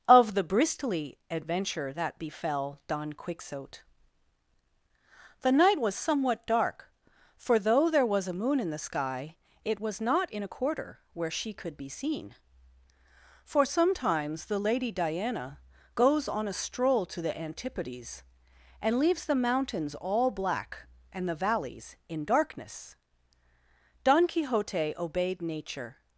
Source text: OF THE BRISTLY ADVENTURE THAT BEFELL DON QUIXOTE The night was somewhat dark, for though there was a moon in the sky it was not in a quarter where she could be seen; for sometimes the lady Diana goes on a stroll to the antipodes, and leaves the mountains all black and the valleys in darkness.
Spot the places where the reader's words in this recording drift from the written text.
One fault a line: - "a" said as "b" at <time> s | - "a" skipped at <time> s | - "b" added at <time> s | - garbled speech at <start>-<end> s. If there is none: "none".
- "Don Quixote obeyed nature" added at 24.0 s